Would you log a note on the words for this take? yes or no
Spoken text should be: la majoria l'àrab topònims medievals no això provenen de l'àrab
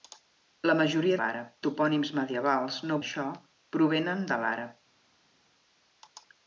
no